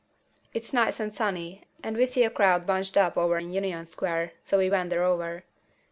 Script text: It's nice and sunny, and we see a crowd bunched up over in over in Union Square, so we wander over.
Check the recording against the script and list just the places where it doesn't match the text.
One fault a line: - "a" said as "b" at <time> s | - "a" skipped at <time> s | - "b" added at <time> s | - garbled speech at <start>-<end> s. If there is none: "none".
- "over in" skipped at 3.5 s